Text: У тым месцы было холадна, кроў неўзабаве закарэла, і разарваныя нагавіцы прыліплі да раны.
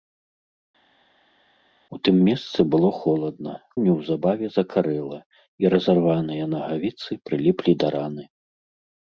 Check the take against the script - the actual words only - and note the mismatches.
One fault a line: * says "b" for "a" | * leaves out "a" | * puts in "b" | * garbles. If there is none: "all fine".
* leaves out "кроў"